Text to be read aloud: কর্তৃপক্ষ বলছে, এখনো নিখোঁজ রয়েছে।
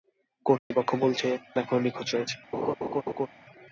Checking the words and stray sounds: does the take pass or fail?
fail